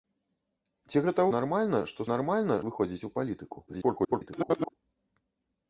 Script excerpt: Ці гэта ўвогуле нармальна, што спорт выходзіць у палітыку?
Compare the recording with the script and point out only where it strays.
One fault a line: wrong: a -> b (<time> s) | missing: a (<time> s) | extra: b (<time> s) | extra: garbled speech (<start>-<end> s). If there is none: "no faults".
missing: ўвогуле (1.2 s)
wrong: спорт -> нармальна (2.1 s)
extra: garbled speech (3.7-4.7 s)